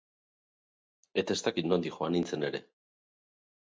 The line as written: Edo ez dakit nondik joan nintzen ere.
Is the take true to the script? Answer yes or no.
no